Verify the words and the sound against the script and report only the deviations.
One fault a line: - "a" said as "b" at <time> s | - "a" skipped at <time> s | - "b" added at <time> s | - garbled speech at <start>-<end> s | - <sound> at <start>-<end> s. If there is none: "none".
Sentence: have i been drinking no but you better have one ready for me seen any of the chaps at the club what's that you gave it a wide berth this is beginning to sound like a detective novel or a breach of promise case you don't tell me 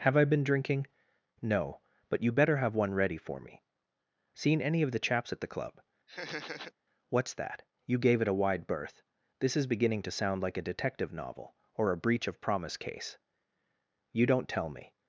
- laugh at 6.1-6.7 s